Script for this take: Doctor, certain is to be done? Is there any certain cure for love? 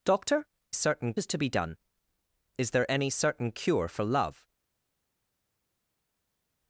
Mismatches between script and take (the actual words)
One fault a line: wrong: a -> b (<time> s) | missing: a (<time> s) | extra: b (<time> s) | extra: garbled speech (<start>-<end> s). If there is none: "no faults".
no faults